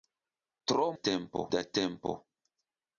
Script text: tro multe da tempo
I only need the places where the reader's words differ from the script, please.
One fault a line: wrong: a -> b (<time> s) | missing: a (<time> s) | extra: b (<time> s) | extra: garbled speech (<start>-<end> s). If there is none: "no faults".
wrong: multe -> tempo (0.9 s)